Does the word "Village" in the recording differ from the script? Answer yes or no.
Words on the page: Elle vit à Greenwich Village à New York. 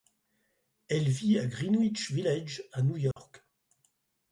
no